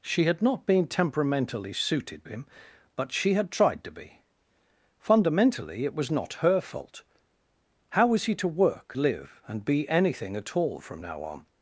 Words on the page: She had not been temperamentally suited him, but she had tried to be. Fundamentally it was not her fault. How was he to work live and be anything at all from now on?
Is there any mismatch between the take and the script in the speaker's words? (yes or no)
no